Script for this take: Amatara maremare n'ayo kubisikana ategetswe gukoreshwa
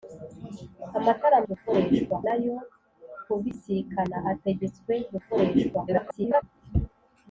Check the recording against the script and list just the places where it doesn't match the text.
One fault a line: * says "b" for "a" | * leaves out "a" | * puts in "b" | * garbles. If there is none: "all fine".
* says "gukoreshwa" for "maremare"
* garbles